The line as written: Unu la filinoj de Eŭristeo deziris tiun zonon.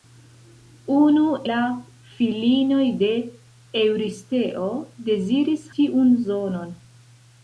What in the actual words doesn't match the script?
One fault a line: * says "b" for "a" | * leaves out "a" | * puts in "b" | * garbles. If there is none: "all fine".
all fine